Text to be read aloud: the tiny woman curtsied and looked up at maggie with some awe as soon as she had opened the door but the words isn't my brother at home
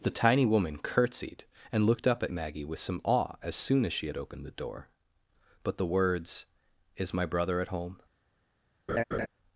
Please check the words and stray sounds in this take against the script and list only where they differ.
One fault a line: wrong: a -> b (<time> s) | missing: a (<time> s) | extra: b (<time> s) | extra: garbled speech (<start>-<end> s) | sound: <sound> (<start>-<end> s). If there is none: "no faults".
wrong: isn't -> is (7.0 s)
sound: laugh (8.9-9.3 s)